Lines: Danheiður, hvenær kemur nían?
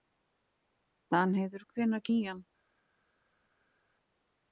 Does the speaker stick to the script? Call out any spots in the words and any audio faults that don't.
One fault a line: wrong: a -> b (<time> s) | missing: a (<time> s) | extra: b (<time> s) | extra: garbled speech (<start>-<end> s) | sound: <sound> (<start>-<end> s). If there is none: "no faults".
missing: kemur (2.1 s)